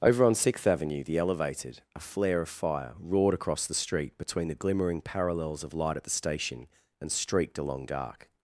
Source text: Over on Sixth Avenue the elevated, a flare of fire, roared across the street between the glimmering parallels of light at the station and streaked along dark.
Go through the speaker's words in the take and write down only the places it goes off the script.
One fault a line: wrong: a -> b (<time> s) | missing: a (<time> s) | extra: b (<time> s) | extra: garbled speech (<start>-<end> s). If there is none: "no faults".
no faults